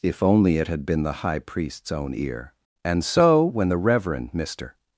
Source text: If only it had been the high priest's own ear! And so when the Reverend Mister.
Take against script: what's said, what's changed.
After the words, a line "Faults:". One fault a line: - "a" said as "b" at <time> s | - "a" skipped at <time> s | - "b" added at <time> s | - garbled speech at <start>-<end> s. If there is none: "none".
If only it had been the high priest's own ear! And so when the Reverend Mister.
Faults:
none